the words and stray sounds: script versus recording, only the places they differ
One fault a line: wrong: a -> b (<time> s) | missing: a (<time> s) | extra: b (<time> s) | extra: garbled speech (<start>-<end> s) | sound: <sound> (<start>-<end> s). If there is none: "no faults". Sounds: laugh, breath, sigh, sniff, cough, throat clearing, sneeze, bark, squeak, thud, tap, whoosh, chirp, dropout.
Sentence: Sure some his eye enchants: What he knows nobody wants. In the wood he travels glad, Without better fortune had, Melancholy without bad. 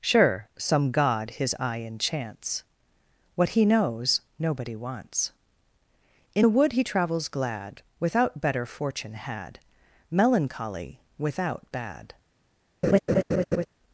extra: god (0.9 s)
sound: laugh (12.8-13.7 s)